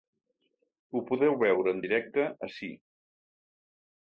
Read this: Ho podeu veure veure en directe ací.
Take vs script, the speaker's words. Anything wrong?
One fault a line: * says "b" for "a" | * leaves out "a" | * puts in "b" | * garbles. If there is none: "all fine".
* leaves out "veure"